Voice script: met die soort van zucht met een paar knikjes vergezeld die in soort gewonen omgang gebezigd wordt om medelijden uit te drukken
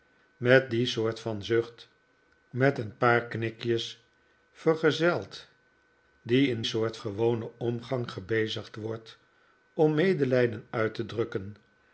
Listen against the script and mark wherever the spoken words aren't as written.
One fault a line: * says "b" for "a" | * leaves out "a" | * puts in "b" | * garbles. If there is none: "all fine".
all fine